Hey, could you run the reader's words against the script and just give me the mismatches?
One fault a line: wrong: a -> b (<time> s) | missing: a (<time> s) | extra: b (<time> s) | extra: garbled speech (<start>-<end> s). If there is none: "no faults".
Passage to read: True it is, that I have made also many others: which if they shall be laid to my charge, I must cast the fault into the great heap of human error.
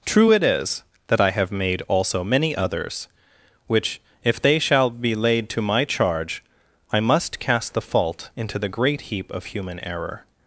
no faults